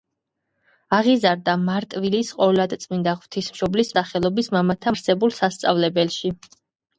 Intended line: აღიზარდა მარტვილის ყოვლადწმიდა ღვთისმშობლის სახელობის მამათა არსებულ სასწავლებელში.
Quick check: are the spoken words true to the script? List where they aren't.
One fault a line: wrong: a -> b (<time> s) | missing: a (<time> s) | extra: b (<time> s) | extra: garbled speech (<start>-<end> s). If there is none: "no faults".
no faults